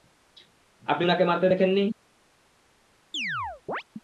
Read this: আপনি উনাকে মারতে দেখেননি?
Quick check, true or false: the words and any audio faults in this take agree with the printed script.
false